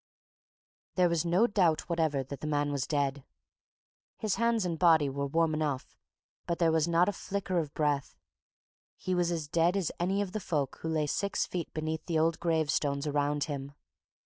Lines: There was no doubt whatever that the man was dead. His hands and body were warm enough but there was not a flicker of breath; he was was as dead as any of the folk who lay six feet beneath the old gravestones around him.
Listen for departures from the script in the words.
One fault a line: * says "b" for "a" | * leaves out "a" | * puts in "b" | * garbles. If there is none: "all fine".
* leaves out "was"